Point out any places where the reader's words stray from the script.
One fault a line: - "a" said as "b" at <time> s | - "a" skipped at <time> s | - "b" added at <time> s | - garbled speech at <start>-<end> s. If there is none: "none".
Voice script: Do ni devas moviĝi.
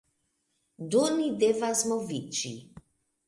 none